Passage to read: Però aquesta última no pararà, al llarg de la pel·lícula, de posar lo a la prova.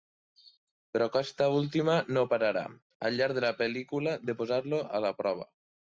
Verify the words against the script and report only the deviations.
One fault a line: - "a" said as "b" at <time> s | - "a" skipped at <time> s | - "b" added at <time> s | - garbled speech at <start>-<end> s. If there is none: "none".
none